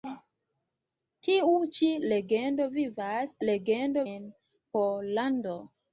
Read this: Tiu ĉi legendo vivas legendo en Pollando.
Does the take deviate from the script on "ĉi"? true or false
false